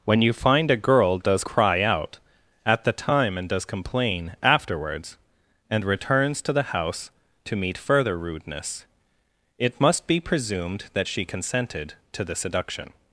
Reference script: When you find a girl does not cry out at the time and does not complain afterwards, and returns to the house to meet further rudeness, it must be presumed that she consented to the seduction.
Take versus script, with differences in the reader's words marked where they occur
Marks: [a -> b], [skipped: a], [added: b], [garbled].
When you find a girl does [skipped: not] cry out at the time and does [skipped: not] complain afterwards, and returns to the house to meet further rudeness, it must be presumed that she consented to the seduction.